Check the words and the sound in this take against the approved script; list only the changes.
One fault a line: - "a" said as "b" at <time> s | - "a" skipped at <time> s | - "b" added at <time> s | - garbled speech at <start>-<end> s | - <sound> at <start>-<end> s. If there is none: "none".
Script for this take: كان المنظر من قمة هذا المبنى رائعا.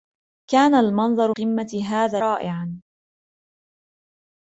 - "من" skipped at 1.3 s
- "المبنى" skipped at 2.2 s